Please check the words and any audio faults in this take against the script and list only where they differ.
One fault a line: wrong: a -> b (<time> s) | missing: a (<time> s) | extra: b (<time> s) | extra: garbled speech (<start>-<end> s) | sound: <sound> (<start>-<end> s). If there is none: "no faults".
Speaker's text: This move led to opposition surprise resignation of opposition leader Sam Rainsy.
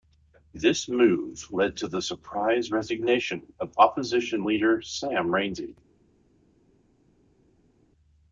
wrong: opposition -> the (1.9 s)